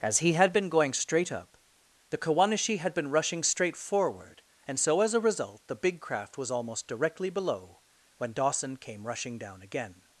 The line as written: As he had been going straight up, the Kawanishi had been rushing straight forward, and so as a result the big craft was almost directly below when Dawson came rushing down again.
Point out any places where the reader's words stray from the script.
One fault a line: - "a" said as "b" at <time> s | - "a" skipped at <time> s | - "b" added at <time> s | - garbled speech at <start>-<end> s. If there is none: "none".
none